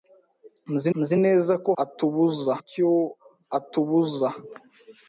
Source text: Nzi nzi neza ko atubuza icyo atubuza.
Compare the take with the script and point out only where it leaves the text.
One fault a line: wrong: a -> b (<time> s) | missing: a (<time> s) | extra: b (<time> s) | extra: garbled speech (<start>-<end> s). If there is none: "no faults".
no faults